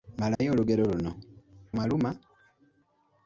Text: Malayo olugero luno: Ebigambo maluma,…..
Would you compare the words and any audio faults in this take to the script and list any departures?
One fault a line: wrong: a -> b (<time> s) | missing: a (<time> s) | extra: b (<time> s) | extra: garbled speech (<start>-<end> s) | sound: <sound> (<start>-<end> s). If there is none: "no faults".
sound: dropout (0.3-0.4 s)
missing: Ebigambo (1.1 s)